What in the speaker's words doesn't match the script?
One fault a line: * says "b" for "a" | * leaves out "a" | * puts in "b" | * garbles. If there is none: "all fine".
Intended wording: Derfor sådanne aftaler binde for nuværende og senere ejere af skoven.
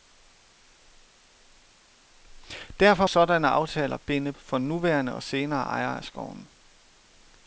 all fine